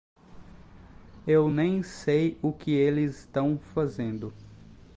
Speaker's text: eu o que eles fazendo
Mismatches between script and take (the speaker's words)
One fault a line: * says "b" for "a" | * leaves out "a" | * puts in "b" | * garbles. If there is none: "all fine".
* puts in "nem sei"
* puts in "tão"